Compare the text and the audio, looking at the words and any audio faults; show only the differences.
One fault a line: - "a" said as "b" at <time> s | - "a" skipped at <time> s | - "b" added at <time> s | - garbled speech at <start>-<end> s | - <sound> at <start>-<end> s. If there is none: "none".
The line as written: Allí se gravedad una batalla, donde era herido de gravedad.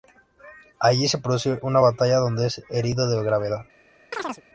- "gravedad" said as "produce" at 1.2 s
- "era" said as "es" at 2.5 s
- chirp at 4.1-4.4 s